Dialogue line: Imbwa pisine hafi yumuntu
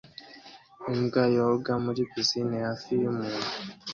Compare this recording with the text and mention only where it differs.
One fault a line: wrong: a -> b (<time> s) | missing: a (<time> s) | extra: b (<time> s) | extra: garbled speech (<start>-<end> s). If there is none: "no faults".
extra: yoga muri (1.4 s)